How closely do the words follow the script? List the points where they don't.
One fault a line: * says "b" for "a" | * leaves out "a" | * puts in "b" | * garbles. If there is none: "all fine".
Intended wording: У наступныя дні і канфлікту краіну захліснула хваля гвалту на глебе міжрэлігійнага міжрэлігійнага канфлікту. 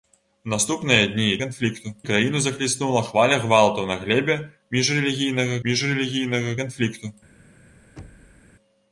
all fine